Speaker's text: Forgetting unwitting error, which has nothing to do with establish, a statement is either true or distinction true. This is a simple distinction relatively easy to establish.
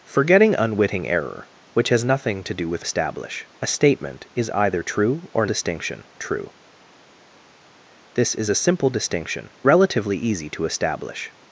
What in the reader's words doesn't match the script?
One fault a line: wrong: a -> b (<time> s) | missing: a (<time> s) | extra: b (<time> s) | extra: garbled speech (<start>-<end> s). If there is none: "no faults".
no faults